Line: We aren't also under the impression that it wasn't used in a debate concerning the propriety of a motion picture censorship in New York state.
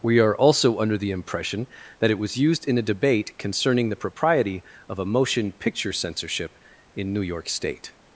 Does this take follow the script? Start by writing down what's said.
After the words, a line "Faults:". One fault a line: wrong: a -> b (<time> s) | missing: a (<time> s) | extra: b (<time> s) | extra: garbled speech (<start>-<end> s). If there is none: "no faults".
We are also under the impression that it was used in a debate concerning the propriety of a motion picture censorship in New York state.
Faults:
wrong: aren't -> are (0.2 s)
wrong: wasn't -> was (2.2 s)